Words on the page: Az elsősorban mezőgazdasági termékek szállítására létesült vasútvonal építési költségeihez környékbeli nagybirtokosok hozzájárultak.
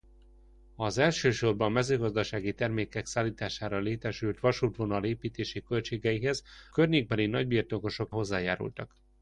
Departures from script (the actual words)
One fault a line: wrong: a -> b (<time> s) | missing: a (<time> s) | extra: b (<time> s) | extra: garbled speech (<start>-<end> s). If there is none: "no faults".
no faults